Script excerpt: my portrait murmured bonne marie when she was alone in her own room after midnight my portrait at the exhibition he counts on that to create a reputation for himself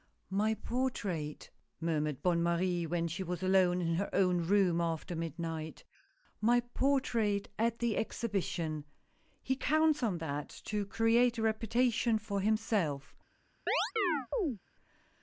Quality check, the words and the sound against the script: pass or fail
fail